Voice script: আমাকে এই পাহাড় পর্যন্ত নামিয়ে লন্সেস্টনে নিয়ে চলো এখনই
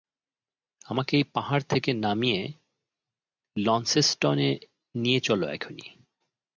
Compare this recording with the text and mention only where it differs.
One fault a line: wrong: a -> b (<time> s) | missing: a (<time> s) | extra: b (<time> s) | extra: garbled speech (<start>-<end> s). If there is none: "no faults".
wrong: পর্যন্ত -> থেকে (1.7 s)